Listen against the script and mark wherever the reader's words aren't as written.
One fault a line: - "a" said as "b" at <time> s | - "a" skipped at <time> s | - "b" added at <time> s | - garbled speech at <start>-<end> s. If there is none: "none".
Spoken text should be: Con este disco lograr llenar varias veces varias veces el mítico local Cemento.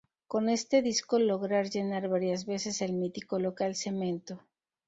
- "varias veces" skipped at 2.8 s